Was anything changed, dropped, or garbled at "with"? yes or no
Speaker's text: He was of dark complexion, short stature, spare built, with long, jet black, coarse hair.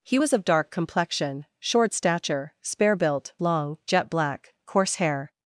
yes